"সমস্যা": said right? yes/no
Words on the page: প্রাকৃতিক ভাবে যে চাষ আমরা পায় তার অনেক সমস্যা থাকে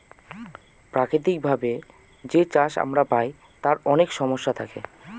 yes